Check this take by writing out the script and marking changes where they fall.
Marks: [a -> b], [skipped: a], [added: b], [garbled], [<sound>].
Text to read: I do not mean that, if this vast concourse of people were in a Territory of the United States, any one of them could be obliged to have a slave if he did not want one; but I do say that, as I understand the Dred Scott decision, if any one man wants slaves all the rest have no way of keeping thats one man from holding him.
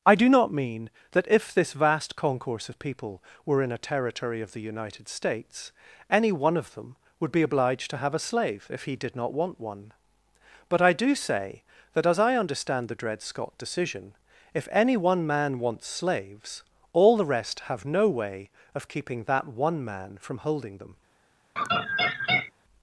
I do not mean that, if this vast concourse of people were in a Territory of the United States, any one of them [could -> would] be obliged to have a slave if he did not want one; but I do say that, as I understand the Dred Scott decision, if any one man wants slaves all the rest have no way of keeping [thats -> that] one man from holding [him. -> them] [laugh]